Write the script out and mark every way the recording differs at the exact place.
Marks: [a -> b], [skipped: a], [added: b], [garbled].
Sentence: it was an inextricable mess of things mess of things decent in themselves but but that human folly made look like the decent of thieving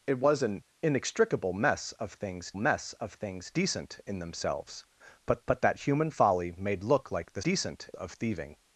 it was an inextricable mess of things mess of things decent in themselves but but that human folly made look like the decent of thieving